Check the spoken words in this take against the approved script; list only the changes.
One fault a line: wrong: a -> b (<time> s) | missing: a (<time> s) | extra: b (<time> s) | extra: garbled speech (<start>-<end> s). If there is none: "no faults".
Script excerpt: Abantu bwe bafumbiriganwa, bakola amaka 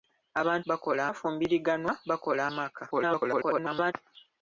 wrong: bwe -> bakola (0.7 s)
extra: garbled speech (2.9-3.9 s)